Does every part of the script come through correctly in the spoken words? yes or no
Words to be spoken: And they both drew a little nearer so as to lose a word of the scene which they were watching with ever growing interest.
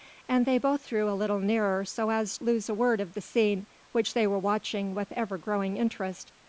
yes